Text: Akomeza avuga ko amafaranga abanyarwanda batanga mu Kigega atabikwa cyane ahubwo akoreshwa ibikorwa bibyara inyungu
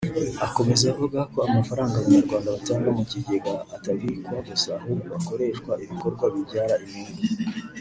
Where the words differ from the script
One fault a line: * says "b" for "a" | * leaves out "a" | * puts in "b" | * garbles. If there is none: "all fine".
* says "gusa" for "cyane"